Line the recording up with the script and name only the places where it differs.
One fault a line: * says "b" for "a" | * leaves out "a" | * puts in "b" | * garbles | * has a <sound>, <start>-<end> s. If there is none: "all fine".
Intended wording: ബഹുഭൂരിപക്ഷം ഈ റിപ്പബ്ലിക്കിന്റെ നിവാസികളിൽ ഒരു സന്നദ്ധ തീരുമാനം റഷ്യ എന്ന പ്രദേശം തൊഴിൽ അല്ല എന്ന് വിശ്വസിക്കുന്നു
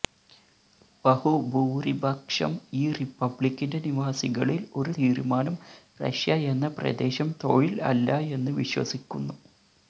* leaves out "സന്നദ്ധ"